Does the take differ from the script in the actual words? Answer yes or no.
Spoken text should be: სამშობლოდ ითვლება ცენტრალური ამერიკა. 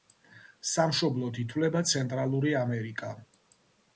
no